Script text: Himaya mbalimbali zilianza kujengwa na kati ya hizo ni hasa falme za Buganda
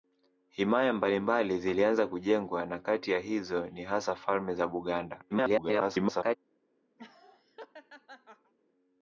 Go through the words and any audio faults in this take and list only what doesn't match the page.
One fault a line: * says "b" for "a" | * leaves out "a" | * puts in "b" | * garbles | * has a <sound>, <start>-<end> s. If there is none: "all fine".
* garbles
* has a laugh, 7.0-8.5 s